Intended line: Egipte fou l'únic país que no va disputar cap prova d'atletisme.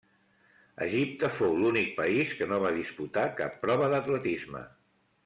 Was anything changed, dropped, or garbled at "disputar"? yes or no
no